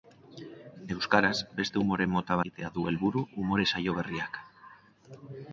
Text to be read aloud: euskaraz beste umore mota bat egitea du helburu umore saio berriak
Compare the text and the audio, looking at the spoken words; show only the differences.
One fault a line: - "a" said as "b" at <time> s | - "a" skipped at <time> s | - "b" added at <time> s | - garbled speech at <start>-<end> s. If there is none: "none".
- "bat" skipped at 2.4 s